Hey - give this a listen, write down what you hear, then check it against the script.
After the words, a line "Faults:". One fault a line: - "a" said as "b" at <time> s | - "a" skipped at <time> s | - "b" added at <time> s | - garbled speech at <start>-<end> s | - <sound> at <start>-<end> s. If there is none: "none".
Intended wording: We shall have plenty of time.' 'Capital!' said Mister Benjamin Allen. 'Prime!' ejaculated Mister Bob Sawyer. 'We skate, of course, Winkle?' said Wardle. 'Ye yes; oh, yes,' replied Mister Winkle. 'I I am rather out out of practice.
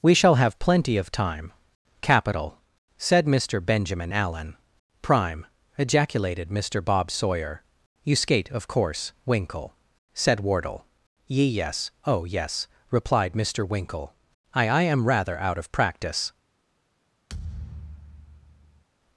We shall have plenty of time.' 'Capital!' said Mister Benjamin Allen. 'Prime!' ejaculated Mister Bob Sawyer. 'You skate, of course, Winkle?' said Wardle. 'Ye yes; oh, yes,' replied Mister Winkle. 'I I am rather out of practice.
Faults:
- "We" said as "You" at 8.0 s
- "out" skipped at 15.6 s
- thud at 17.3-18.8 s